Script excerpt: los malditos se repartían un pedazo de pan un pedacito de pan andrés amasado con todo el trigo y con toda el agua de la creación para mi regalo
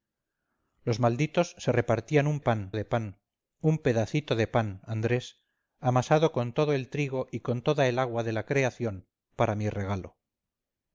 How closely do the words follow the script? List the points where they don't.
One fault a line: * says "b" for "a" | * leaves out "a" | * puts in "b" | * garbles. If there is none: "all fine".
* says "pan" for "pedazo"